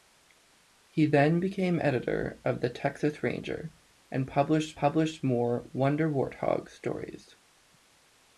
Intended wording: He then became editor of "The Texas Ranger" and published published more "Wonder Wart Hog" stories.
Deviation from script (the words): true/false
false